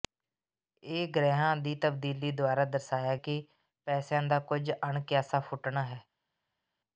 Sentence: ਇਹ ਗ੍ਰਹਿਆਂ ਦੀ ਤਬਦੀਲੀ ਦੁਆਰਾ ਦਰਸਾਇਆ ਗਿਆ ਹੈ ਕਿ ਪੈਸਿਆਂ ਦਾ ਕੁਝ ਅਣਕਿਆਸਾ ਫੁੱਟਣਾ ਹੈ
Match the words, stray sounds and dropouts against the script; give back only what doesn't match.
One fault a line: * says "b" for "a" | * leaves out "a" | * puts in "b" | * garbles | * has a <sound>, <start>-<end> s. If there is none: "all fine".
* leaves out "ਗਿਆ ਹੈ"